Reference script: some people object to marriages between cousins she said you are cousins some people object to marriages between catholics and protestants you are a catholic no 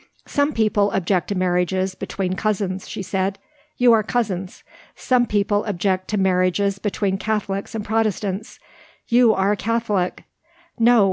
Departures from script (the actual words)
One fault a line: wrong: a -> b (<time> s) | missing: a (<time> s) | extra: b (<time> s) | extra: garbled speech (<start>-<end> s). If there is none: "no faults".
no faults